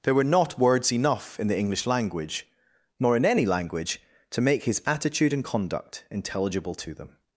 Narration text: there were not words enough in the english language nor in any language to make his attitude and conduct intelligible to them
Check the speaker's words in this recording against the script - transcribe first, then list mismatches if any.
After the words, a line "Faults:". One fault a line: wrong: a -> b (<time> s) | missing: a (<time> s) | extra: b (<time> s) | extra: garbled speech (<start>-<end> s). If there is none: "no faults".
there were not words enough in the english language nor in any language to make his attitude and conduct intelligible to them
Faults:
no faults